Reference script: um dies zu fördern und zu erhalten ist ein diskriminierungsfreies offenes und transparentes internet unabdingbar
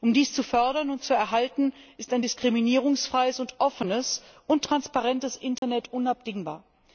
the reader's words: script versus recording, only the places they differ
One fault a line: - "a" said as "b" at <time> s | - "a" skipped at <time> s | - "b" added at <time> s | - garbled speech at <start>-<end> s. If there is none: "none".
none